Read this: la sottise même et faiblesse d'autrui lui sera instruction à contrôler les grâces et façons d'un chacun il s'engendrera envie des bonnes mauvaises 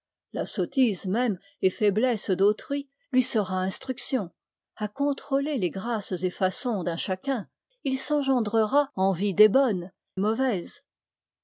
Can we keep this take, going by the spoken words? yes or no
yes